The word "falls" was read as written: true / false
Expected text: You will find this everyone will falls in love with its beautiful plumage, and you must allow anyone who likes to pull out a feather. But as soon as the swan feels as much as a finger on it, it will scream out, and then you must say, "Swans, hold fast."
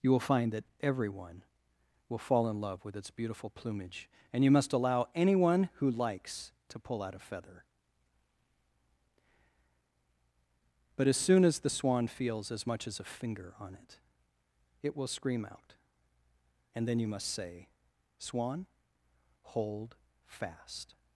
false